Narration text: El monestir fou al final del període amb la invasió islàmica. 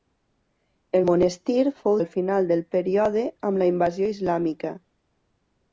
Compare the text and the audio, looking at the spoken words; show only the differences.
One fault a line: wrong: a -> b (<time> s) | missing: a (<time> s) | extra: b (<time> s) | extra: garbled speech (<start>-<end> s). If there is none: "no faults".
no faults